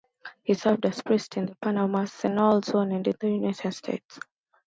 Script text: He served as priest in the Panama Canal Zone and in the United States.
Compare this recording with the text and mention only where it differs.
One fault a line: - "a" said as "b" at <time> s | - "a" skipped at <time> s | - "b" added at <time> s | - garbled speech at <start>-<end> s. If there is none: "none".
none